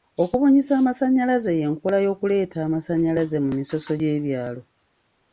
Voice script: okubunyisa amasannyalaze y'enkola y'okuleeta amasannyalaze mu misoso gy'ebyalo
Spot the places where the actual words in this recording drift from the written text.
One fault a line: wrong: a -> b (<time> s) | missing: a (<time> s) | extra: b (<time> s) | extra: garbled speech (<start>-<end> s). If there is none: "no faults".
no faults